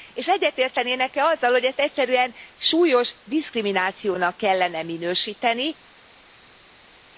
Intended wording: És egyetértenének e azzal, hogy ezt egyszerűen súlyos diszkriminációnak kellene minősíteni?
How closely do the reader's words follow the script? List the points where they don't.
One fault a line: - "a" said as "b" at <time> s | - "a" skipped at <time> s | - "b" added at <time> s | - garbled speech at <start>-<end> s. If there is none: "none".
none